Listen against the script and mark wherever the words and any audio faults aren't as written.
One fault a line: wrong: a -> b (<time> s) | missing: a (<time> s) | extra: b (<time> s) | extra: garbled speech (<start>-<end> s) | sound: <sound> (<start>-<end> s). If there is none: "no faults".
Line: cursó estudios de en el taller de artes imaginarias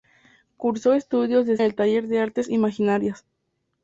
no faults